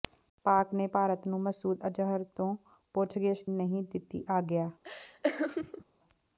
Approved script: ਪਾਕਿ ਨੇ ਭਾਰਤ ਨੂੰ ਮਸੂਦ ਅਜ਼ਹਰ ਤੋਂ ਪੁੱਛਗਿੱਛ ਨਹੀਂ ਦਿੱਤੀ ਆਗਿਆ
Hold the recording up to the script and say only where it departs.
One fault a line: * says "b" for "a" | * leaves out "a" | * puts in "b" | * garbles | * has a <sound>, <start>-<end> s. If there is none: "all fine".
* has a laugh, 4.8-5.8 s